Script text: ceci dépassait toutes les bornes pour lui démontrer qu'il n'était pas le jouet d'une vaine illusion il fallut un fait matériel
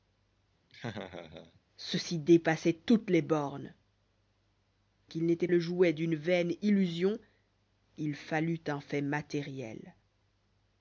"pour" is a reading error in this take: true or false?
true